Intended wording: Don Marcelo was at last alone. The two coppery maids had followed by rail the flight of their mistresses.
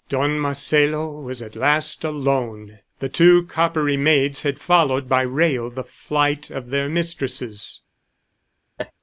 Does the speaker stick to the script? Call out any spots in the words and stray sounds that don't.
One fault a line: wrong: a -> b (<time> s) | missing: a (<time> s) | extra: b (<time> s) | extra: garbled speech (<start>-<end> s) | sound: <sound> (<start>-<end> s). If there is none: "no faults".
sound: laugh (8.8-8.9 s)